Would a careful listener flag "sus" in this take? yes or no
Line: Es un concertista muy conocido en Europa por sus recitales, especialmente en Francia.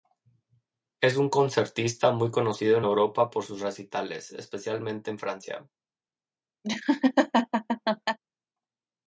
no